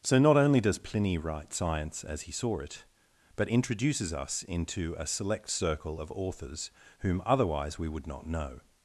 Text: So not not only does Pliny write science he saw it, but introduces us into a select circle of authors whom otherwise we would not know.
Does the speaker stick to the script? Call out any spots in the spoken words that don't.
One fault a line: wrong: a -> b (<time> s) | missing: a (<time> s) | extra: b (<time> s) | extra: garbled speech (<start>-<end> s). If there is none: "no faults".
missing: not (0.3 s)
extra: as (2.0 s)